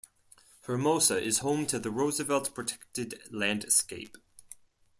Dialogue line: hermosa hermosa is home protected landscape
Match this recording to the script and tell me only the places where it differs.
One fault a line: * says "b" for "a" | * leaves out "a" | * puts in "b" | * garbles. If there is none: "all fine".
* leaves out "hermosa"
* puts in "to the roosevelt"